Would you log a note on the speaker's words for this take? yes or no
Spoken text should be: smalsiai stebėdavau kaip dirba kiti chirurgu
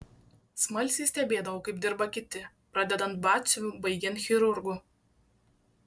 yes